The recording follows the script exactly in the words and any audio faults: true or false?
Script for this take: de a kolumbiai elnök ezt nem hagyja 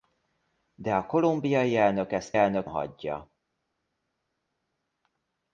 false